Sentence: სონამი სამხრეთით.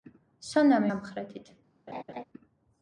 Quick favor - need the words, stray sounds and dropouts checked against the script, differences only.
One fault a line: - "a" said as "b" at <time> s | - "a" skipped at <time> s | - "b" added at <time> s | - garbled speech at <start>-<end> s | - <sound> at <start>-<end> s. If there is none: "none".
- laugh at 1.9-2.2 s